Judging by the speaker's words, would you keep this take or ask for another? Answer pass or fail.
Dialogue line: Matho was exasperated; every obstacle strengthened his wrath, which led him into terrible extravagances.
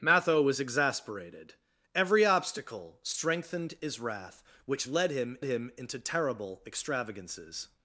fail